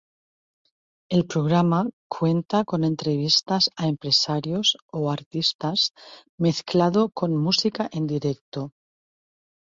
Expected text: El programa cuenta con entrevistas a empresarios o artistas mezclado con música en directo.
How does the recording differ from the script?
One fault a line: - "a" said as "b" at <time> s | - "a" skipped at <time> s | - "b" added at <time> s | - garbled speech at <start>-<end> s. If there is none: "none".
none